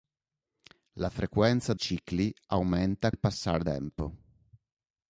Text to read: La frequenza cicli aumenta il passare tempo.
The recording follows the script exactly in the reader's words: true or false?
true